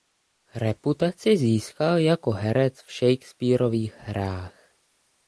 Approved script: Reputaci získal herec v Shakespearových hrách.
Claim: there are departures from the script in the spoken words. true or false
true